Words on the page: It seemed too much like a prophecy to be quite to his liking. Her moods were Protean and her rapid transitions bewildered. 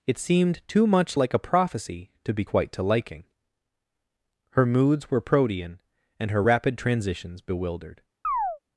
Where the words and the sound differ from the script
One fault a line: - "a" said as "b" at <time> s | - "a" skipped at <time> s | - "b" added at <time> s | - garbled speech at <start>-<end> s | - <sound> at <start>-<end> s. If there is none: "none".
- "his" skipped at 2.8 s
- chirp at 8.2-8.6 s